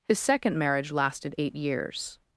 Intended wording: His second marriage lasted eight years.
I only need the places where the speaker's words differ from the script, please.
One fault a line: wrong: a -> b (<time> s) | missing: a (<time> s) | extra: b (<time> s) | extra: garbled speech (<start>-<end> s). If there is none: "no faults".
no faults